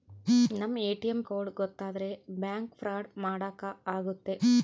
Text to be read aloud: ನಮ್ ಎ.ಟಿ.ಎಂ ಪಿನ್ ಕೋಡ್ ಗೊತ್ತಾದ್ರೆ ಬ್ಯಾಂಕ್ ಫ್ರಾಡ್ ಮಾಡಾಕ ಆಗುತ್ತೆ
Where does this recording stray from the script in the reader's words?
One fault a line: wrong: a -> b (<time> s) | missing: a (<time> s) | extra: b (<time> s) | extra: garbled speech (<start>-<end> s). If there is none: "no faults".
missing: ಪಿನ್ (1.2 s)